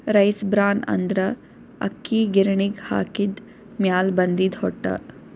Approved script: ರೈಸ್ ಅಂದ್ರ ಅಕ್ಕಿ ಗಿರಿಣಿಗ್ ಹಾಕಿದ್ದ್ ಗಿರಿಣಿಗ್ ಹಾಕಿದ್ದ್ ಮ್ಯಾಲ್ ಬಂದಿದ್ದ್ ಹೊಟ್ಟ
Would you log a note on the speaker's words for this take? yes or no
yes